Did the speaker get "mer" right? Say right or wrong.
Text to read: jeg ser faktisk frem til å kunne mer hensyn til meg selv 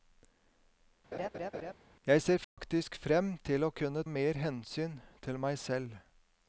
right